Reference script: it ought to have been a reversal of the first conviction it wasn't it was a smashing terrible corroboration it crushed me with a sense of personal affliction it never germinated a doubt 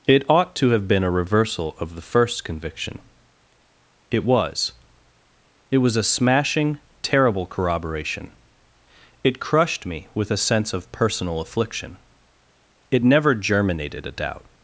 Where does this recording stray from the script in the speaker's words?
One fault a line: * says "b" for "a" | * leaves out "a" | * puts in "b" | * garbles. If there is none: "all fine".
* says "was" for "wasn't"